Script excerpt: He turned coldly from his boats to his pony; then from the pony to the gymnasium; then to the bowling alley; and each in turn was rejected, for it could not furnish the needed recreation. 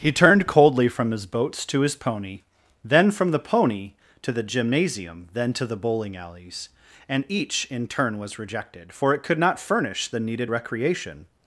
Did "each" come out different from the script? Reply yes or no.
no